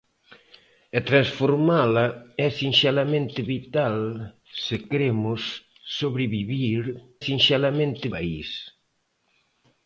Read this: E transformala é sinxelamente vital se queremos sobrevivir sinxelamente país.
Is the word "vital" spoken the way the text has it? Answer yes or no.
yes